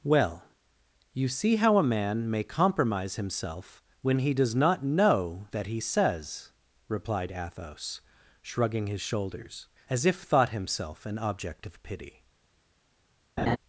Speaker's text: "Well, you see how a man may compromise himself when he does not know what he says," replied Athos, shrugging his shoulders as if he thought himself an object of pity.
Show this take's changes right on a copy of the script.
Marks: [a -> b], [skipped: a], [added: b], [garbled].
"Well, you see how a man may compromise himself when he does not know [what -> that] he says," replied Athos, shrugging his shoulders as if [skipped: he] thought himself an object of pity.